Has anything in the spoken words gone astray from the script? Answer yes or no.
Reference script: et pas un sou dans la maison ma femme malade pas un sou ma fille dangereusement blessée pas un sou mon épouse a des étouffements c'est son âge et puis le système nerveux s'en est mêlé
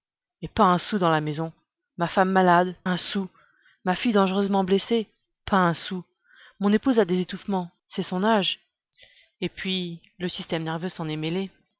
yes